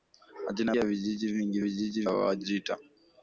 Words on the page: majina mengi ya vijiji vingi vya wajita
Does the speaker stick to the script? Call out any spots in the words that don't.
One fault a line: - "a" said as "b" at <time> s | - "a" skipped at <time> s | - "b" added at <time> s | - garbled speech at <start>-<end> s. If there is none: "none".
- "mengi" skipped at 0.8 s
- "vya" said as "vijiji" at 1.6 s